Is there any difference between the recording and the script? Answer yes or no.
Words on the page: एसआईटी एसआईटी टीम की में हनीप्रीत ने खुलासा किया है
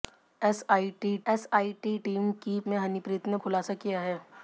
no